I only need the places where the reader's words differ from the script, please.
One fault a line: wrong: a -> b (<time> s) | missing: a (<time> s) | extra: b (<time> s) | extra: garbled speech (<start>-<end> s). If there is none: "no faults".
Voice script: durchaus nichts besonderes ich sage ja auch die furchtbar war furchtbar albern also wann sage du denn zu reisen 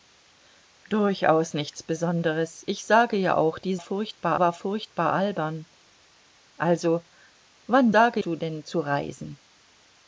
no faults